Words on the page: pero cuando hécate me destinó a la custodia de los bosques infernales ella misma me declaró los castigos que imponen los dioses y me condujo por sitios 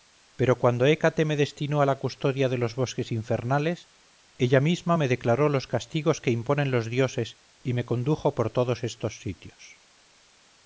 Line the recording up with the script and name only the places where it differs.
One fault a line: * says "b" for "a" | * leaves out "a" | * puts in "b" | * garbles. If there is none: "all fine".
* puts in "todos estos"